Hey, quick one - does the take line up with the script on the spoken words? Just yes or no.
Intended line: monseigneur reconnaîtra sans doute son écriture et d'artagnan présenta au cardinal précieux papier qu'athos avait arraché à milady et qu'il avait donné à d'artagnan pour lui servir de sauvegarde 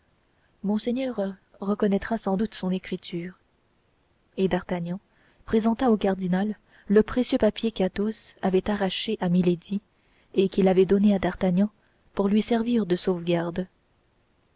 no